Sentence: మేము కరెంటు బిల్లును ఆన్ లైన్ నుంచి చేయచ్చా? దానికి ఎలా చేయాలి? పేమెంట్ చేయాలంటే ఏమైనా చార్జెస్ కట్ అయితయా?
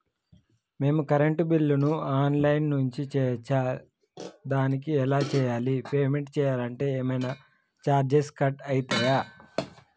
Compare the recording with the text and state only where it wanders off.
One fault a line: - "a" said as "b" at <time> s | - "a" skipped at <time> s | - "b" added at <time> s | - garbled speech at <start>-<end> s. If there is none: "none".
none